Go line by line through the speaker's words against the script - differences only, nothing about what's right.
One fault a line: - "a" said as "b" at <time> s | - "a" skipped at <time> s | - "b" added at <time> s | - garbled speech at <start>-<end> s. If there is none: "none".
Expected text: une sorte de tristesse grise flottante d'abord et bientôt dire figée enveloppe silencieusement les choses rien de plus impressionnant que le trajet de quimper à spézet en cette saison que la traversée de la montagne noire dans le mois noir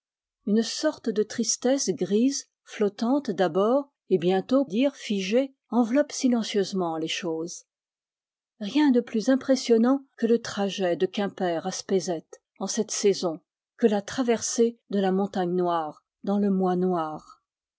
none